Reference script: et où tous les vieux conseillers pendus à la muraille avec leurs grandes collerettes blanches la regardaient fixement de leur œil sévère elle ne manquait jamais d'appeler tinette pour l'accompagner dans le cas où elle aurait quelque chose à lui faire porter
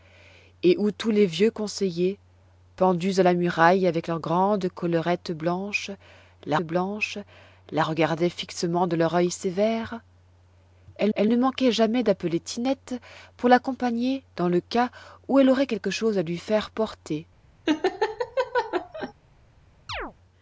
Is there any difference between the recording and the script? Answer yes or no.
yes